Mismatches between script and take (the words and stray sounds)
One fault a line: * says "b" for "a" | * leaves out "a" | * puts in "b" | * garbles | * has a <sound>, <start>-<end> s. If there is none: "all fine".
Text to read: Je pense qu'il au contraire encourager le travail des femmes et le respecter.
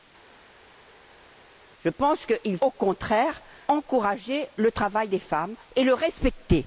all fine